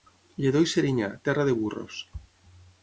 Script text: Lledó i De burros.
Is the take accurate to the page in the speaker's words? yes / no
no